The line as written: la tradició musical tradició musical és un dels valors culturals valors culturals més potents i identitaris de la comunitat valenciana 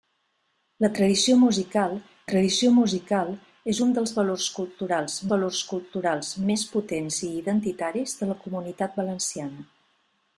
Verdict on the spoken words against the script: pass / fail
pass